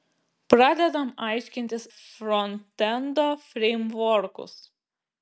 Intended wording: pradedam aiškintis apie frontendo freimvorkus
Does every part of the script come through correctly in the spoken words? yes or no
no